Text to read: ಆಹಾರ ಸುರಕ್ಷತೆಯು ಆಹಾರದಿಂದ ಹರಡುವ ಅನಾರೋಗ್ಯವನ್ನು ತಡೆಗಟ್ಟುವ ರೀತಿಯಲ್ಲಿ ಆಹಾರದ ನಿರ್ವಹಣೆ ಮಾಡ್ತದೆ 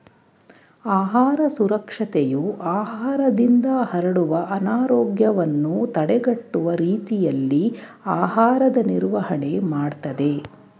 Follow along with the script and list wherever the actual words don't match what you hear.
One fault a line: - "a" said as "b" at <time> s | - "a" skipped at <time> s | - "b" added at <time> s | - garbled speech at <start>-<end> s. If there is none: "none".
none